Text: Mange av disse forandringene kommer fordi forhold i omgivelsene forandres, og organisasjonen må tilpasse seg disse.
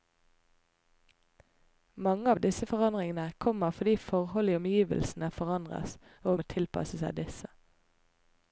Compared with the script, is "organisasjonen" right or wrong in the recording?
wrong